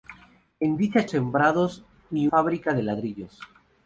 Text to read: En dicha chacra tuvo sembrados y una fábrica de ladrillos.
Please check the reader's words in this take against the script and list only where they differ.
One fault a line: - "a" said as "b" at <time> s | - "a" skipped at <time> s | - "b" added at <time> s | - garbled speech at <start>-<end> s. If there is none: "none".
- "chacra tuvo" skipped at 1.1 s
- "una" skipped at 2.3 s